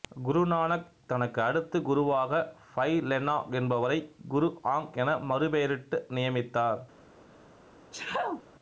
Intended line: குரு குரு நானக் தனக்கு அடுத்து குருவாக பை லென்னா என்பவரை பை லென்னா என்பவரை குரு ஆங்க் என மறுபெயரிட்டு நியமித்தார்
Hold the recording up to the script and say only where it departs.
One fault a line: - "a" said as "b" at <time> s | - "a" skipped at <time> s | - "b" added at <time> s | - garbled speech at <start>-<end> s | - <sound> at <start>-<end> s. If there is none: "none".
- "குரு" skipped at 0.4 s
- "பை லென்னா என்பவரை" skipped at 4.0 s
- sneeze at 7.9-8.4 s